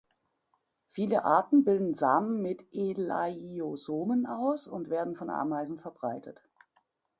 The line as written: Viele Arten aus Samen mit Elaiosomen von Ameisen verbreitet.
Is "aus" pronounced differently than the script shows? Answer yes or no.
yes